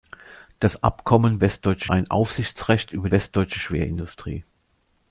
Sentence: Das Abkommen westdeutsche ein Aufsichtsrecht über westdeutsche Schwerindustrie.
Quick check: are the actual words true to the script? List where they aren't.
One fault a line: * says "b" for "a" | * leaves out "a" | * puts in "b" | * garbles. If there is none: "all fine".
all fine